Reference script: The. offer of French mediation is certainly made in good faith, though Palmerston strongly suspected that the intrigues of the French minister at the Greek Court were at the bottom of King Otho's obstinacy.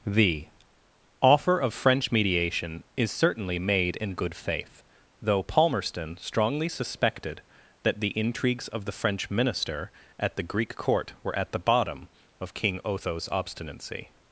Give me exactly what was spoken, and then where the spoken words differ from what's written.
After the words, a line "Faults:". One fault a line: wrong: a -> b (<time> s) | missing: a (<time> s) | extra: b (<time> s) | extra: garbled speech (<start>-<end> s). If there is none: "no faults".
The. offer of French mediation is certainly made in good faith, though Palmerston strongly suspected that the intrigues of the French minister at the Greek Court were at the bottom of King Otho's obstinacy.
Faults:
no faults